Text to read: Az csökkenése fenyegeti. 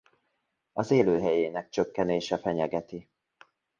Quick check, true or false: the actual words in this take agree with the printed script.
false